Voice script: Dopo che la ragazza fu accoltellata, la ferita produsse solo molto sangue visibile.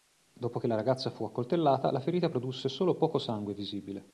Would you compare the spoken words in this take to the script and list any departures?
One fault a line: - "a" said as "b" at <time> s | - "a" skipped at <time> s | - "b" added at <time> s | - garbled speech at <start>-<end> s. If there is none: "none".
- "molto" said as "poco" at 2.9 s